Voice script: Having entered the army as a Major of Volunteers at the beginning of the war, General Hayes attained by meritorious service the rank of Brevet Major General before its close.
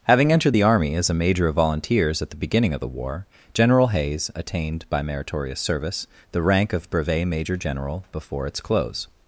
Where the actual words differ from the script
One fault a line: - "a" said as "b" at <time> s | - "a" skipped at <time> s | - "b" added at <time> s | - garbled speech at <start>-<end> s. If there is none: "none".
none